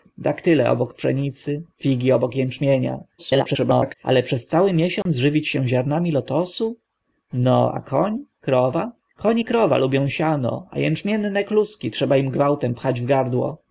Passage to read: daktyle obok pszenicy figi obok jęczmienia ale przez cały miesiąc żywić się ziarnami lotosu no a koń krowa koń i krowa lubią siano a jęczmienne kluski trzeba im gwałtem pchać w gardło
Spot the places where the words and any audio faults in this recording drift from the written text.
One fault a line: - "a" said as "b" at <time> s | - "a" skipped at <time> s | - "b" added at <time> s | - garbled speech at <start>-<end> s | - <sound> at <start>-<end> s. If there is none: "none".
- garbled speech at 3.2-4.0 s
- dropout at 5.0-5.1 s